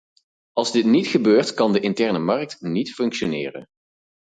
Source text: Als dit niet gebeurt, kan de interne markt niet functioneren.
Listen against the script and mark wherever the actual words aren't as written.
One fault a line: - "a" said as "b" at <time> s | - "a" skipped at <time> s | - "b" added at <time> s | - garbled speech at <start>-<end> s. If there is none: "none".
none